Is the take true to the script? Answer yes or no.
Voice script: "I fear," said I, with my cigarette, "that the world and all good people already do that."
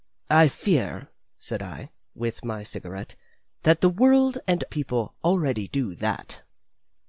no